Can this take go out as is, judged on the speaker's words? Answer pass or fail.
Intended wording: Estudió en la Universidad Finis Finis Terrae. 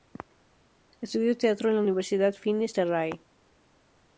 fail